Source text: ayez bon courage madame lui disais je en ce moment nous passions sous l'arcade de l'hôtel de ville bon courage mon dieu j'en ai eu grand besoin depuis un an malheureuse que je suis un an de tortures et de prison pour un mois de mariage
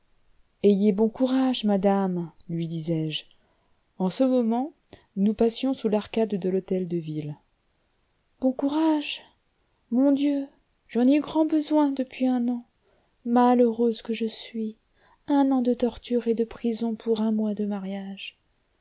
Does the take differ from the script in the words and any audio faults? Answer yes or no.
no